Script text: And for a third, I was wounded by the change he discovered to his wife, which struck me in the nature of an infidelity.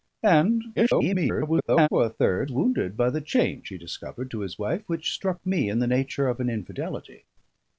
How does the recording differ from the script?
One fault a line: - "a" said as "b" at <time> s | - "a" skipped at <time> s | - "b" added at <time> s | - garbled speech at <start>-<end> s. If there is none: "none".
- garbled speech at 0.8-1.9 s
- "I was" skipped at 2.5 s